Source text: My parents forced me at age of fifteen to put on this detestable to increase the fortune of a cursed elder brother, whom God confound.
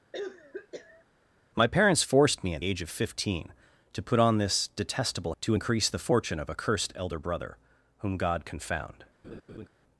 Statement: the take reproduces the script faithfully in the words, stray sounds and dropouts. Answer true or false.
false